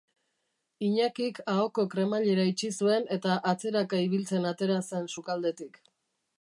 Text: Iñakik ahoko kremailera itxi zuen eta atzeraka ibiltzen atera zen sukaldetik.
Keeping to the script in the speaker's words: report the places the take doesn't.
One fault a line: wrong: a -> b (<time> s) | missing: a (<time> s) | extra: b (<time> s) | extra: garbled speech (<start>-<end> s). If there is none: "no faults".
no faults